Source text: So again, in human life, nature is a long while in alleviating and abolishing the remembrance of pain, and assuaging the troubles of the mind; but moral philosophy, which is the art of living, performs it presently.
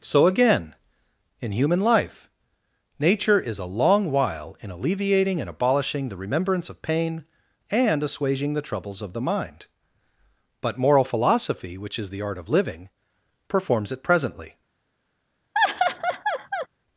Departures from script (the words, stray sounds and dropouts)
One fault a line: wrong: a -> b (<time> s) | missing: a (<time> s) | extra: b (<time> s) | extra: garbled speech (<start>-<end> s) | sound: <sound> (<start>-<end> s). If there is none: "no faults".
sound: laugh (15.5-16.7 s)